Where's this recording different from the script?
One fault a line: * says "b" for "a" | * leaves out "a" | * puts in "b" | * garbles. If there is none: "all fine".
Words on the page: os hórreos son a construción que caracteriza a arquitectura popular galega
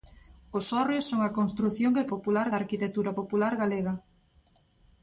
* says "popular" for "caracteriza"